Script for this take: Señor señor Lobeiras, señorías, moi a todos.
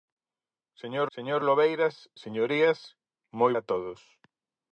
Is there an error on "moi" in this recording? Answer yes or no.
no